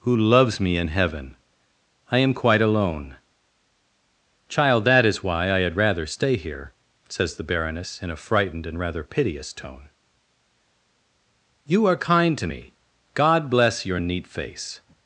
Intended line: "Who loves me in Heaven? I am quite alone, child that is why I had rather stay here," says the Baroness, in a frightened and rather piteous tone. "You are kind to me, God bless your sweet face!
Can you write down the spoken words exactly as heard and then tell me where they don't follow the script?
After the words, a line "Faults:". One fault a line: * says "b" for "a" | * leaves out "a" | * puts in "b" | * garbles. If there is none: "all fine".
"Who loves me in Heaven? I am quite alone, child that is why I had rather stay here," says the Baroness, in a frightened and rather piteous tone. "You are kind to me, God bless your neat face!
Faults:
* says "neat" for "sweet"